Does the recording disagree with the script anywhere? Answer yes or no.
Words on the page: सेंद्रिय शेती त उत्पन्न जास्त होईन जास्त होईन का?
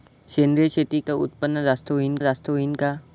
no